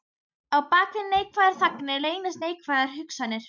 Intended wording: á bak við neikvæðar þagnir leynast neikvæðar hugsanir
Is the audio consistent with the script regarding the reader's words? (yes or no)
yes